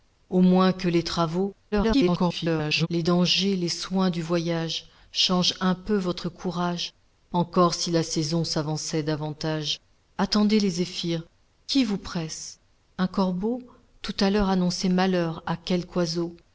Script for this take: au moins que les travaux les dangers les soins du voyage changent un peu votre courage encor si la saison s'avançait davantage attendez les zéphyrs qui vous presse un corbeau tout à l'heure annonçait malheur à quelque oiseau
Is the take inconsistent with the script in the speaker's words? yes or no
yes